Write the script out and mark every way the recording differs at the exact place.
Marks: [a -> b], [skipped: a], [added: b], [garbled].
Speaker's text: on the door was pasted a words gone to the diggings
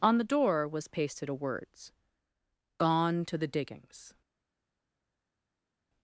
on the door was pasted a words gone to the diggings